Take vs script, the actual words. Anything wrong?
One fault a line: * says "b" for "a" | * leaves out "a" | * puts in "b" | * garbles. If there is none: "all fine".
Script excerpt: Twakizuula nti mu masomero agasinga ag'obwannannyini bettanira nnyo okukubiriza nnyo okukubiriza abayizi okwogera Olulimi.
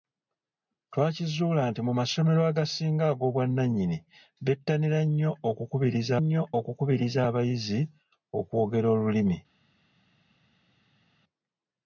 all fine